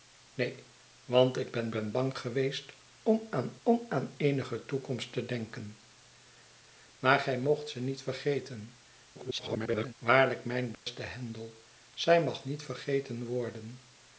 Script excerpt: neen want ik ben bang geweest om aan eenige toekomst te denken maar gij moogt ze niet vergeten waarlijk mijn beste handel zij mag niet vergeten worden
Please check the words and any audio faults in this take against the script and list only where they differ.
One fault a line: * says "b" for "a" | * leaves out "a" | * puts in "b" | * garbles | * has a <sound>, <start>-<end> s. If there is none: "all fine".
* puts in "ben"
* puts in "om aan"
* garbles
* has a dropout, 10.7-10.9 s